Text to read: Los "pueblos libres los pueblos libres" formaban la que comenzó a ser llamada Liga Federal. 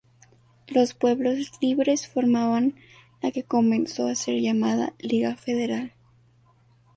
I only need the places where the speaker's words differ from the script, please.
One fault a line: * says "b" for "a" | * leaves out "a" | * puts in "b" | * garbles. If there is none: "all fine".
* leaves out "los pueblos libres"